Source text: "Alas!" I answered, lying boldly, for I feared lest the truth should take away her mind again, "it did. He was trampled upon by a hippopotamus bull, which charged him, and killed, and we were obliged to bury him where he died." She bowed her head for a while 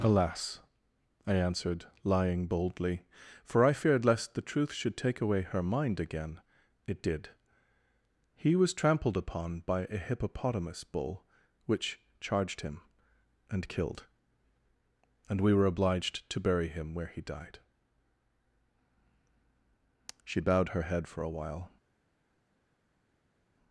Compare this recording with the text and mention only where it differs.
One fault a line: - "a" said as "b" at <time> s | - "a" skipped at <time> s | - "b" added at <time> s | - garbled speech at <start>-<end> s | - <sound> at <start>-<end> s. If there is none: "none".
none